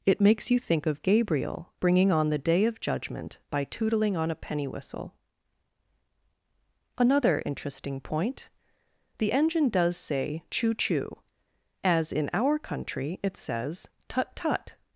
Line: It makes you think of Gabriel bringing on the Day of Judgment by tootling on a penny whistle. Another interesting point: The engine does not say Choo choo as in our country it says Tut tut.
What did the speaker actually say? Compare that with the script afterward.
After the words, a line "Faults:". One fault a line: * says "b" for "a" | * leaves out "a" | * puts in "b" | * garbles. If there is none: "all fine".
It makes you think of Gabriel bringing on the Day of Judgment by tootling on a penny whistle. Another interesting point: The engine does say Choo choo as in our country it says Tut tut.
Faults:
* leaves out "not"